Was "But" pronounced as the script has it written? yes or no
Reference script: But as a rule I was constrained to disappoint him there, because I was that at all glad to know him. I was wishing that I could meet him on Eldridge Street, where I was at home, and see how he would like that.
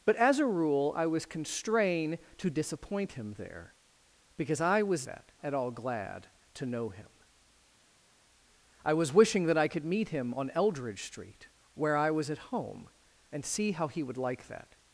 yes